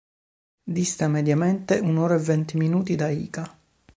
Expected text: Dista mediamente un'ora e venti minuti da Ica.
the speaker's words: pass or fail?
pass